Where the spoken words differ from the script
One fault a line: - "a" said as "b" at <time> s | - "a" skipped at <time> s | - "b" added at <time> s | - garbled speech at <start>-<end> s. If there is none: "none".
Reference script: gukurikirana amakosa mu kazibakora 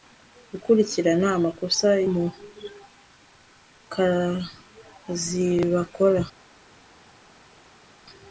none